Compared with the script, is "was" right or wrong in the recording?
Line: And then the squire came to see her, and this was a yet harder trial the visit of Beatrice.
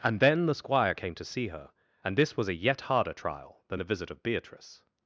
right